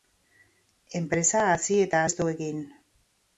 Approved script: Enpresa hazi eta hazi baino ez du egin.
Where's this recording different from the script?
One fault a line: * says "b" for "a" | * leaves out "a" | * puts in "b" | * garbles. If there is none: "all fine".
* leaves out "hazi baino"